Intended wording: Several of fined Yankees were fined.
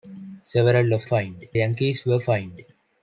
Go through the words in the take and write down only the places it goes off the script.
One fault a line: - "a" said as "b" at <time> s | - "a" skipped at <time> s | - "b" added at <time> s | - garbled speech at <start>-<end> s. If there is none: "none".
none